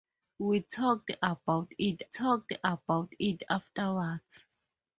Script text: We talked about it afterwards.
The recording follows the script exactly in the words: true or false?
false